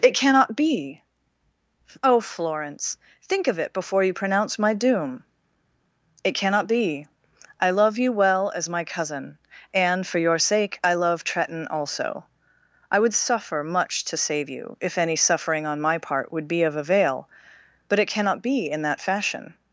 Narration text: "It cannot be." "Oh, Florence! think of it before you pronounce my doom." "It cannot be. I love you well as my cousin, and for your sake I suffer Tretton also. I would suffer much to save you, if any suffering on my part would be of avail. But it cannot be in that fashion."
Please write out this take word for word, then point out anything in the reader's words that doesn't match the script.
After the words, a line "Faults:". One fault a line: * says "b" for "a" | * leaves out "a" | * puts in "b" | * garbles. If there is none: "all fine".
"It cannot be." "Oh, Florence! think of it before you pronounce my doom." "It cannot be. I love you well as my cousin, and for your sake I love Tretton also. I would suffer much to save you, if any suffering on my part would be of avail. But it cannot be in that fashion."
Faults:
* says "love" for "suffer"